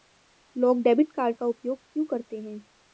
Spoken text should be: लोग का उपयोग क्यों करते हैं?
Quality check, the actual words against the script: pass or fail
fail